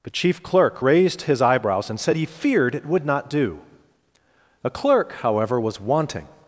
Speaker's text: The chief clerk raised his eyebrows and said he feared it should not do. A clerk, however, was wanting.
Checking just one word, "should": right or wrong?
wrong